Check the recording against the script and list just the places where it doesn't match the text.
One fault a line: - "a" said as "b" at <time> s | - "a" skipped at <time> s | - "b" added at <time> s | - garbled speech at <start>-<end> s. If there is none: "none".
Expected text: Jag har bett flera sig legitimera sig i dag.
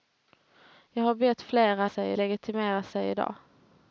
none